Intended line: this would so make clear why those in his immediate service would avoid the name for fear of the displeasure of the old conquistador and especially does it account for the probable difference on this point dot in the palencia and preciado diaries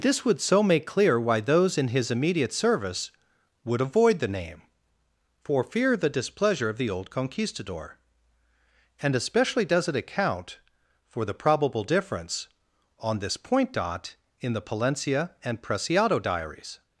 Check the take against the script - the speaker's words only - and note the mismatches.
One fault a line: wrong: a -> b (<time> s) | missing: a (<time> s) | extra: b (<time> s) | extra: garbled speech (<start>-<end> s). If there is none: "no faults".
missing: of (6.0 s)